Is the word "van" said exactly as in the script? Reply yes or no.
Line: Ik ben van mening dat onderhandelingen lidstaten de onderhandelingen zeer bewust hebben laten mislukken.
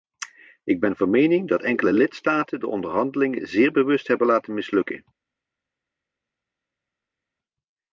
yes